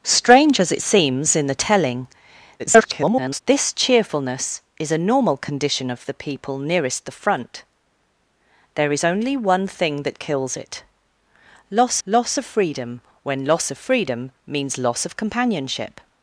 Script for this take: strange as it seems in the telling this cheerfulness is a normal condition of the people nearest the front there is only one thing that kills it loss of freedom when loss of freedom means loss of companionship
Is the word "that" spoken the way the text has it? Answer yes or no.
yes